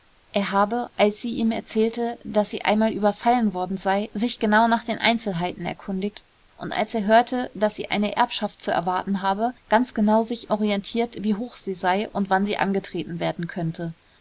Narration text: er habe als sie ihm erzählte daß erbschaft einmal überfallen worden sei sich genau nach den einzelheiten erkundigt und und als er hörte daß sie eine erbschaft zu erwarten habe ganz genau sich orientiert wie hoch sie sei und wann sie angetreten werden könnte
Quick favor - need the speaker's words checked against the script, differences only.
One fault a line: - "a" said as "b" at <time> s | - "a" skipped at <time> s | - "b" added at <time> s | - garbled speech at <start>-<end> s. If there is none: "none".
- "erbschaft" said as "sie" at 2.5 s
- "und" skipped at 6.7 s